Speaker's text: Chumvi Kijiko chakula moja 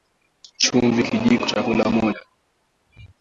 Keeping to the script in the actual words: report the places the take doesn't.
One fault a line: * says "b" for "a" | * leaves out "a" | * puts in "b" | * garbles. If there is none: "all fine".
all fine